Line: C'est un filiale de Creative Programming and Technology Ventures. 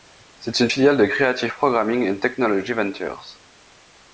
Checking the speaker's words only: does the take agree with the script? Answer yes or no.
no